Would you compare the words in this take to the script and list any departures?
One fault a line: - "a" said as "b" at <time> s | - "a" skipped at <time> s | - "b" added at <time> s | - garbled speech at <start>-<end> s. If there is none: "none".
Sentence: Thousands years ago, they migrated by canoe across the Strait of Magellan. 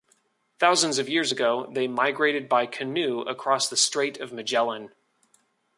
- "of" added at 1.0 s